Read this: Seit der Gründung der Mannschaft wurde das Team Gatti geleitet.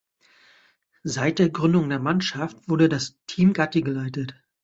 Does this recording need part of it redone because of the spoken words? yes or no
no